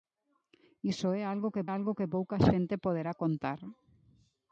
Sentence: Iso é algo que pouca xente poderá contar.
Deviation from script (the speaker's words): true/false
true